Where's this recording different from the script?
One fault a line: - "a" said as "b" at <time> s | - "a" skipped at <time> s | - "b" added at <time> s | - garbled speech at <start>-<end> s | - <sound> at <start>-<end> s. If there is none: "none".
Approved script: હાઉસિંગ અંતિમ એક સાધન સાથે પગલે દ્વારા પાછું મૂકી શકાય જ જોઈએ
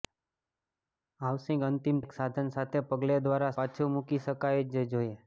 none